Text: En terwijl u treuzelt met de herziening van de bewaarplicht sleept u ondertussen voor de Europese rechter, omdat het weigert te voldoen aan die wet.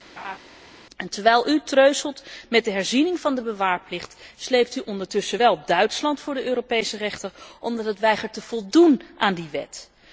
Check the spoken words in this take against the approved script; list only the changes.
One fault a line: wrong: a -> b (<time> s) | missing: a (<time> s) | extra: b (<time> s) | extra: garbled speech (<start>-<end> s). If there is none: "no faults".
extra: wel Duitsland (5.4 s)